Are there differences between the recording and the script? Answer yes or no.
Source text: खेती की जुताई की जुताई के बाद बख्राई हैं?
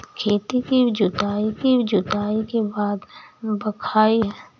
no